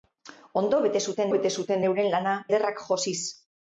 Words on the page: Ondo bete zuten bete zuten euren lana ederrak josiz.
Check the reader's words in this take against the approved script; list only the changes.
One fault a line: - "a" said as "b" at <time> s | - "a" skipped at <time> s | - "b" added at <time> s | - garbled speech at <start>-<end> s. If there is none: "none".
none